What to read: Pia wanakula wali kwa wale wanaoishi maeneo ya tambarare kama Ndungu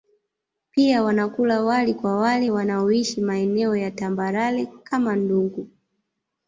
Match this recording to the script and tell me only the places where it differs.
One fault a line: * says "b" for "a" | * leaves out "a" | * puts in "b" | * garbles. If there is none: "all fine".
all fine